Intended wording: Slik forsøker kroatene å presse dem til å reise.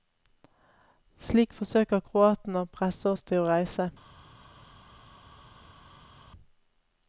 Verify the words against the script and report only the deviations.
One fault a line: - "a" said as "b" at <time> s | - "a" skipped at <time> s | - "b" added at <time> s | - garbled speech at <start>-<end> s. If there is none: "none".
- "dem" said as "oss" at 3.1 s